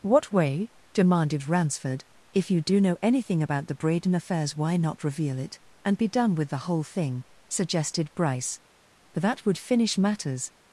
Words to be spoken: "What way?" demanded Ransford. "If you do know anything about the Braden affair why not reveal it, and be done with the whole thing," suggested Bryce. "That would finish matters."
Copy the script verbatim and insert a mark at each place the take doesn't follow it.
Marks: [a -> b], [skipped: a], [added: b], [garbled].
"What way?" demanded Ransford. "If you do know anything about the Braden [affair -> affairs] why not reveal it, and be done with the whole thing," suggested Bryce. "That would finish matters."